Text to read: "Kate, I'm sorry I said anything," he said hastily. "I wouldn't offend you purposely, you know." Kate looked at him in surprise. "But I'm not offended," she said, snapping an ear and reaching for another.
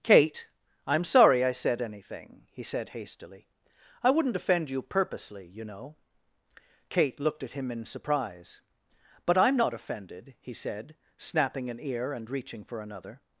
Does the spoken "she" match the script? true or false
false